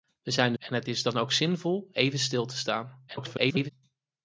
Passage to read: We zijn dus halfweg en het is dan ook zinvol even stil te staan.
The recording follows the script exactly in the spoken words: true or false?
false